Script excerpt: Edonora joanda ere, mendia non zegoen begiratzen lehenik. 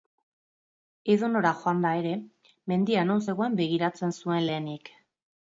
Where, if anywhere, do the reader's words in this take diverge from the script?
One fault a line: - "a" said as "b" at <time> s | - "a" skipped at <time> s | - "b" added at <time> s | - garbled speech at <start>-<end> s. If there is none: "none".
- "zuen" added at 4.2 s